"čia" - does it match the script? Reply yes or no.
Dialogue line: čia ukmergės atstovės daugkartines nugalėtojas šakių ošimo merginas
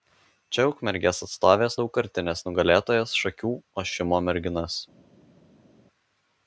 yes